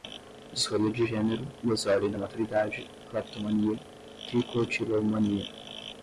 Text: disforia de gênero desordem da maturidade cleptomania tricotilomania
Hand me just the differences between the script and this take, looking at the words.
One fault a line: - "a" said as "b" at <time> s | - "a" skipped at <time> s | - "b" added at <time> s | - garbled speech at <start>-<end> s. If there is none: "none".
none